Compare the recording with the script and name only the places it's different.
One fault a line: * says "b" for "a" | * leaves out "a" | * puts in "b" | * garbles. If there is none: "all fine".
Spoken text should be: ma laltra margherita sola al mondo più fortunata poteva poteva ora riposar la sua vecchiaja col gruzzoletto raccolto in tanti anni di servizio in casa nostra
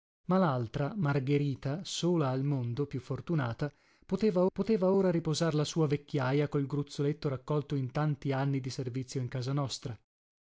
all fine